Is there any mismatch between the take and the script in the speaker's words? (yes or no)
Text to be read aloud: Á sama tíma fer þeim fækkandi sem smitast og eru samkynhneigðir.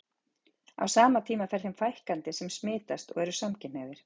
no